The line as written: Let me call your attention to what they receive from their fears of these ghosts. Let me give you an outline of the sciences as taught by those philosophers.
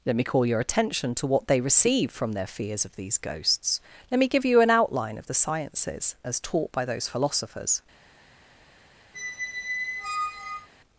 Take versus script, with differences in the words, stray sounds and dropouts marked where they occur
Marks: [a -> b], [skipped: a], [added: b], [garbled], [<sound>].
Let me call your attention to what they receive from their fears of these ghosts. Let me give you an outline of the sciences as taught by those philosophers. [squeak]